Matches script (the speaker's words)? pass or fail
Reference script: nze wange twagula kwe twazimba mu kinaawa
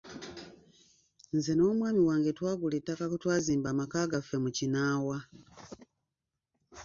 fail